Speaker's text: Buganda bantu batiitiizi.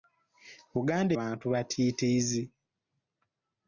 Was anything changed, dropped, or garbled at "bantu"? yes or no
no